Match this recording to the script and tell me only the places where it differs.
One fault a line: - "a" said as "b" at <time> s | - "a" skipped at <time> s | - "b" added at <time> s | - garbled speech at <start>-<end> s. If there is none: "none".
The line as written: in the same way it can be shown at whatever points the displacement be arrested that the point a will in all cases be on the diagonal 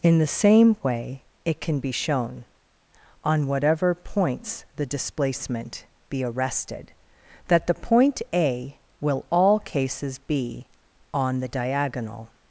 - "at" said as "on" at 3.2 s
- "in" skipped at 9.2 s